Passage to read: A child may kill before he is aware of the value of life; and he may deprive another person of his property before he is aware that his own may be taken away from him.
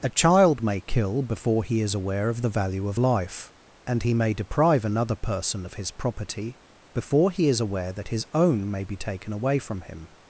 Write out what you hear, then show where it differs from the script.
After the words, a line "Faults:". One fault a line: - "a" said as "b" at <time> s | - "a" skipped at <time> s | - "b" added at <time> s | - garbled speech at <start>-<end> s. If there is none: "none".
A child may kill before he is aware of the value of life; and he may deprive another person of his property before he is aware that his own may be taken away from him.
Faults:
none